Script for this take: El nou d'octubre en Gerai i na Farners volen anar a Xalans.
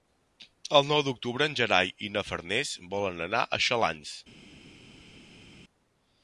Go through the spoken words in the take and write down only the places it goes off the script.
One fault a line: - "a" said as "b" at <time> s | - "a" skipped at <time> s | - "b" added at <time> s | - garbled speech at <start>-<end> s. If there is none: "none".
none